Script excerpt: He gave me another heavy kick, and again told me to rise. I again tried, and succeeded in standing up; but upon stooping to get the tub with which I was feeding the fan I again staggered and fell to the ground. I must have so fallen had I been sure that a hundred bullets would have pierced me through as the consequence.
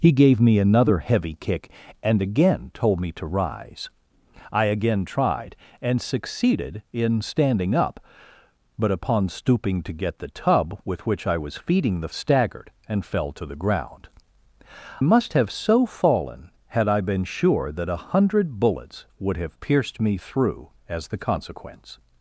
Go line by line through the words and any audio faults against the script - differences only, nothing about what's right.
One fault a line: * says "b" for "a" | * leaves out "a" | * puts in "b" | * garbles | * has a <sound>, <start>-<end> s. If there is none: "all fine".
* leaves out "fan I again"
* leaves out "I"